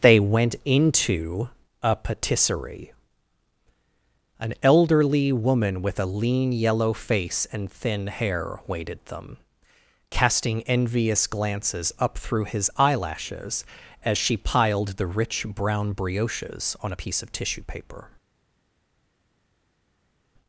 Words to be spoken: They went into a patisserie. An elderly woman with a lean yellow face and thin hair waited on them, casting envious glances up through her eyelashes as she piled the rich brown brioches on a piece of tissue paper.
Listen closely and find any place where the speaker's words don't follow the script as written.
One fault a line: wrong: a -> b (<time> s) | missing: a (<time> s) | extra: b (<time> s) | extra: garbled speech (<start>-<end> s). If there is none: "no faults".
missing: on (9.1 s)
wrong: her -> his (12.4 s)